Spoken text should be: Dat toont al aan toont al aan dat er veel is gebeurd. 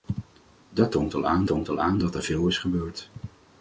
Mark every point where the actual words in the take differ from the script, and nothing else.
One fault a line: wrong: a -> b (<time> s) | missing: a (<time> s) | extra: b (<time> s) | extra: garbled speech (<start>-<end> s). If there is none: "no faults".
no faults